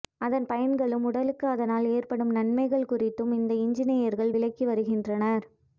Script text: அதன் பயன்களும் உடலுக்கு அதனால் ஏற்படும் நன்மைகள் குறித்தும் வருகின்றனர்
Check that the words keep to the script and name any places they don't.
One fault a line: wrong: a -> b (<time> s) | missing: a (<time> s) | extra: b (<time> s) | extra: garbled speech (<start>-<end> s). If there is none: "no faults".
extra: இந்த இன்ஜினியர்கள் விளக்கி (3.4 s)